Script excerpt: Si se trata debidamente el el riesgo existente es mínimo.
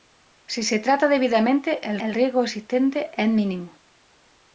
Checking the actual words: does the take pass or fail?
pass